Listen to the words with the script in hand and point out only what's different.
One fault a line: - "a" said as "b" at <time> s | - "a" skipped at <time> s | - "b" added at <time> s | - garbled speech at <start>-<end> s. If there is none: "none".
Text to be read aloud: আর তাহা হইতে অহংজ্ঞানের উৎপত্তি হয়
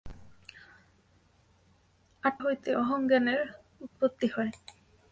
- "তাহা" skipped at 2.3 s